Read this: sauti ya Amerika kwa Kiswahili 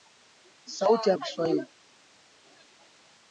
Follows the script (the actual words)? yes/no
no